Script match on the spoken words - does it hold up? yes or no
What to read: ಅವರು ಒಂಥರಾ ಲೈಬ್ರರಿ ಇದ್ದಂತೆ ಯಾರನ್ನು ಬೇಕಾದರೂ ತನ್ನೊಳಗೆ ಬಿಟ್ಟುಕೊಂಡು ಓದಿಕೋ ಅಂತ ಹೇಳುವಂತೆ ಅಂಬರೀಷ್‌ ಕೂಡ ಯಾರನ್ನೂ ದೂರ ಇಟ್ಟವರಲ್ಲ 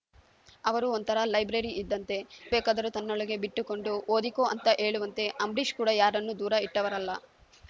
no